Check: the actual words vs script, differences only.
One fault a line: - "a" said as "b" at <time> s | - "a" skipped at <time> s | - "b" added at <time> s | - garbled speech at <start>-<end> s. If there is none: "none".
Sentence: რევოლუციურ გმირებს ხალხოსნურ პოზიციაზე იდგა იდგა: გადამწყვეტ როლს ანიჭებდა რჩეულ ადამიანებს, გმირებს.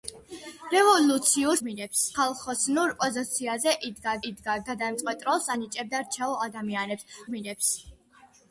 none